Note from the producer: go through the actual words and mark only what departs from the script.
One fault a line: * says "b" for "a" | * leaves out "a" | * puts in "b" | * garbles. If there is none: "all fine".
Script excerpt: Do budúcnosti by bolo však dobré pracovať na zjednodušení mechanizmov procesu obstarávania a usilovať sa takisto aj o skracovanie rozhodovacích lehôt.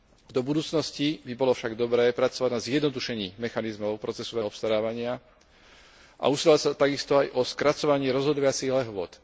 all fine